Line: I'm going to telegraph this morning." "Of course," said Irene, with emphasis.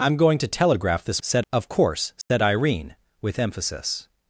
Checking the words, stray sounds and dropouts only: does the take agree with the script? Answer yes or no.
no